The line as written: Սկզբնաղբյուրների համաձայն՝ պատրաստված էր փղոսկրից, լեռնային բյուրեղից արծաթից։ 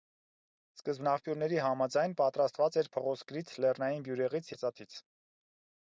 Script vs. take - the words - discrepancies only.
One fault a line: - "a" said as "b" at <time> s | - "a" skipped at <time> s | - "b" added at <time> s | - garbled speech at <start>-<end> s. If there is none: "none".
none